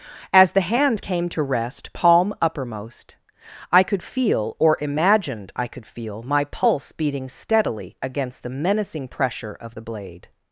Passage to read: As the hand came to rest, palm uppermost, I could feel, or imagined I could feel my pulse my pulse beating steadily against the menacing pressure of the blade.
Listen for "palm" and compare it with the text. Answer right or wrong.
right